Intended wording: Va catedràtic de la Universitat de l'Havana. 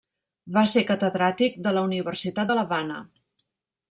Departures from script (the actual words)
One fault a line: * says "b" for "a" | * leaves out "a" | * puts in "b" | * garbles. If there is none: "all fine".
* puts in "ser"